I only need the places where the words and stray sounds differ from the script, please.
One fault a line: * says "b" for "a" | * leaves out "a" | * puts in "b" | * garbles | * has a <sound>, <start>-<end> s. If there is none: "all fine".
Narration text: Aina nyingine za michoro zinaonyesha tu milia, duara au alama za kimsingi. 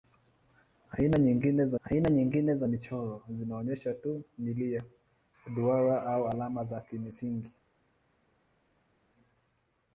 * puts in "aina nyingine za"